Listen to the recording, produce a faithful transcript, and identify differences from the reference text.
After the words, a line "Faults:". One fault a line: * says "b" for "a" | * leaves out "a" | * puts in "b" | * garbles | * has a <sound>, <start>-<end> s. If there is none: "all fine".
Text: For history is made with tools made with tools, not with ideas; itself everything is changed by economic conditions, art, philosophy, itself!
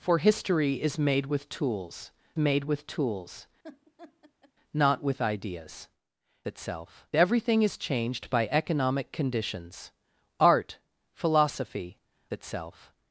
For history is made with tools made with tools, not with ideas; itself everything is changed by economic conditions, art, philosophy, itself!
Faults:
* has a laugh, 3.6-4.5 s